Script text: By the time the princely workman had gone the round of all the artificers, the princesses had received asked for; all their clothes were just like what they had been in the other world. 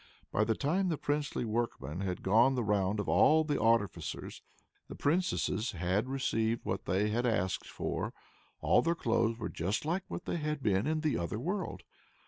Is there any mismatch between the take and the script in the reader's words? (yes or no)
yes